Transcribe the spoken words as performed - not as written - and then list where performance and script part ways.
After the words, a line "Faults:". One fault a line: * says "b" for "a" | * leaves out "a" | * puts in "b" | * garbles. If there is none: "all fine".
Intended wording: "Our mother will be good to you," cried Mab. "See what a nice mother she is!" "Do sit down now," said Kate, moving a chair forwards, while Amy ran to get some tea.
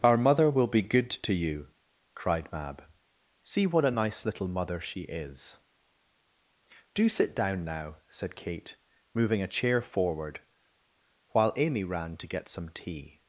"Our mother will be good to you," cried Mab. "See what a nice little mother she is!" "Do sit down now," said Kate, moving a chair forward, while Amy ran to get some tea.
Faults:
* puts in "little"
* says "forward" for "forwards"